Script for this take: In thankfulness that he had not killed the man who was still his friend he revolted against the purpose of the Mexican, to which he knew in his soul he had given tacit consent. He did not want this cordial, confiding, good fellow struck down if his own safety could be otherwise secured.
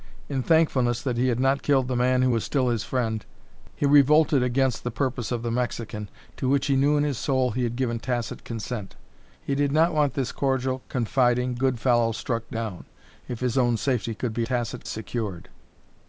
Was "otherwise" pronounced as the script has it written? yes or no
no